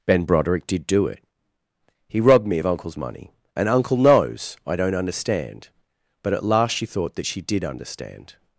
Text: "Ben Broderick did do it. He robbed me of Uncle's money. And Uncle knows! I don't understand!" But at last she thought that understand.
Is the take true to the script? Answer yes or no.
no